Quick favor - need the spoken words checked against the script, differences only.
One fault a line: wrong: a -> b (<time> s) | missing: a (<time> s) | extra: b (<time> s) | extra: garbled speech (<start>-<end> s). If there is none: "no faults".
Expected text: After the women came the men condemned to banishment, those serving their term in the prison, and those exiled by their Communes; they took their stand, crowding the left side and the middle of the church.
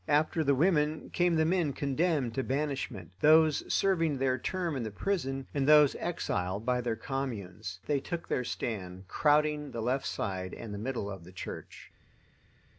no faults